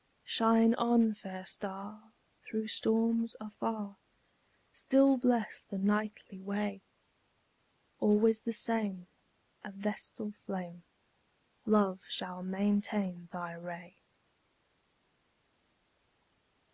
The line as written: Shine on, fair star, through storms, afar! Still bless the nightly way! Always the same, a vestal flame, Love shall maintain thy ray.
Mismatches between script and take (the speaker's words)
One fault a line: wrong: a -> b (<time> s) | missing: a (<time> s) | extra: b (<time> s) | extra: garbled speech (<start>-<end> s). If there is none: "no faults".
no faults